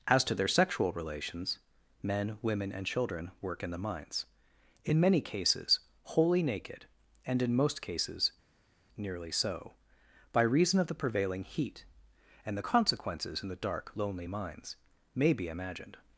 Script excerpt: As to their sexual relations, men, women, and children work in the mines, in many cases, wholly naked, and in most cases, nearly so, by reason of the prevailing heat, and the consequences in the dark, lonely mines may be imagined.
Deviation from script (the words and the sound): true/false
false